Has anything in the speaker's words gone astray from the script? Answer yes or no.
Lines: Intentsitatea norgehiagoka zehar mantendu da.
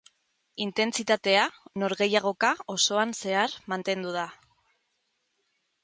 yes